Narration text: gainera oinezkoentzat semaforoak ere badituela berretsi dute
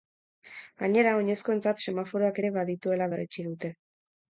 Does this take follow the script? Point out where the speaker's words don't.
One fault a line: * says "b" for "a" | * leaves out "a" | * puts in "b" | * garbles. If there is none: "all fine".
all fine